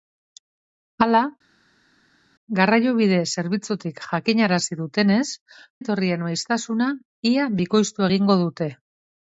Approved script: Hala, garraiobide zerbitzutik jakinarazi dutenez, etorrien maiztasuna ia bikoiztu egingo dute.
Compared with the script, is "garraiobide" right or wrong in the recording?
right